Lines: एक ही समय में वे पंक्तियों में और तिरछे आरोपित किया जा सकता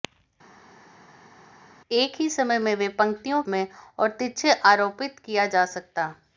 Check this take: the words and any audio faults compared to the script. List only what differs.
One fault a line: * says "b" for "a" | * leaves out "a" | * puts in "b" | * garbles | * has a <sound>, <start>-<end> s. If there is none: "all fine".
all fine